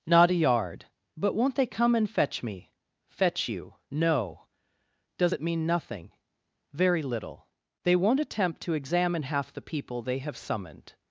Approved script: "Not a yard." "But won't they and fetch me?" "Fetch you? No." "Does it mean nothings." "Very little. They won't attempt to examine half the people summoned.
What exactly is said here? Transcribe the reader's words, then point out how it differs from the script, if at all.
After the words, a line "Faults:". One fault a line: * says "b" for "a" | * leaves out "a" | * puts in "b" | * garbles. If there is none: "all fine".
"Not a yard." "But won't they come and fetch me?" "Fetch you? No." "Does it mean nothing." "Very little. They won't attempt to examine half the people they have summoned.
Faults:
* puts in "come"
* says "nothing" for "nothings"
* puts in "they have"